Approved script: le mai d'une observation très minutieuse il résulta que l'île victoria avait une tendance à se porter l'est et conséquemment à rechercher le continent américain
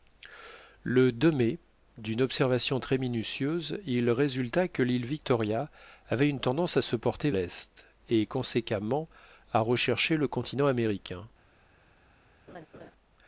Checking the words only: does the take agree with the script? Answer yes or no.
yes